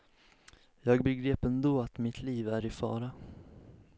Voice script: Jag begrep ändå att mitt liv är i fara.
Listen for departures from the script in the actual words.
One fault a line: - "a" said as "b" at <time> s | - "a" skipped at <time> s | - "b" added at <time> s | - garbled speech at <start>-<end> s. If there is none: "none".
none